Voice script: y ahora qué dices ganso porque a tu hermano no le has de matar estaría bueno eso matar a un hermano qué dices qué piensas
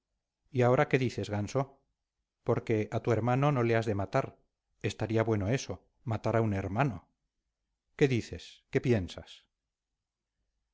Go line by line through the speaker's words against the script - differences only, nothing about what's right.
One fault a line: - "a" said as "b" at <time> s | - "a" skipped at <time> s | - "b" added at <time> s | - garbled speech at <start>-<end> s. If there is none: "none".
none